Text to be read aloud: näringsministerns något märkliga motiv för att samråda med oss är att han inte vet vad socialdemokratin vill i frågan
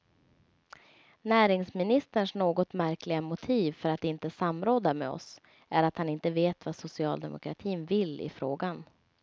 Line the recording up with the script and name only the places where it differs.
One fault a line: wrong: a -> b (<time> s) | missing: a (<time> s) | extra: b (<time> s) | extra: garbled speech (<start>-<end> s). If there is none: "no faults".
extra: inte (4.0 s)